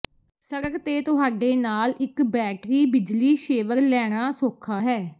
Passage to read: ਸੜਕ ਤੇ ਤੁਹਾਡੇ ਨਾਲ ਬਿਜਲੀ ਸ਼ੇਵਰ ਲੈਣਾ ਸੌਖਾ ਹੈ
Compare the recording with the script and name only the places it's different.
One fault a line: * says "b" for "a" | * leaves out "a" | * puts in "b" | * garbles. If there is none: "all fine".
* puts in "ਇੱਕ ਬੈਟਰੀ"